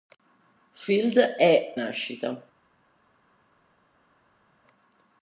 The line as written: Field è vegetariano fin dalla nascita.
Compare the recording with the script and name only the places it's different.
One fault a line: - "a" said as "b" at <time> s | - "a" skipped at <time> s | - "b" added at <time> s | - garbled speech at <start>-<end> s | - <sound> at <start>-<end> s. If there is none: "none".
- "vegetariano fin dalla" skipped at 1.8 s